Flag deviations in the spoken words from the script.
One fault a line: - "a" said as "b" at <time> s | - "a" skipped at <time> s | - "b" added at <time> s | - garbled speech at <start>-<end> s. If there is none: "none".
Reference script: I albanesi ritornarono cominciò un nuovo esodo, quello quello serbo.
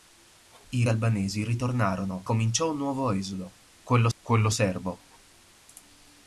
none